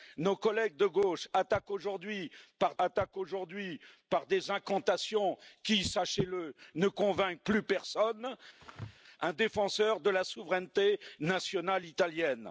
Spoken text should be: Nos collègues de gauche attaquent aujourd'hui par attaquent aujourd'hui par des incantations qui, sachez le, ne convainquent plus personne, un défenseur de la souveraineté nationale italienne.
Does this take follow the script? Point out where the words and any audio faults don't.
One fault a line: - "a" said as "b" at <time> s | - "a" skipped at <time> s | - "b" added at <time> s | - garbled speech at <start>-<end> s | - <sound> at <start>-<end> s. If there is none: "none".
- sneeze at 8.6-9.0 s